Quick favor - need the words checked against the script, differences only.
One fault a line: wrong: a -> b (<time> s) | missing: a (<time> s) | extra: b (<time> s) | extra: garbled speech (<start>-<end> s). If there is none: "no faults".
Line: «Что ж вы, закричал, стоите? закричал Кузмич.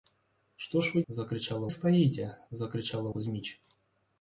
no faults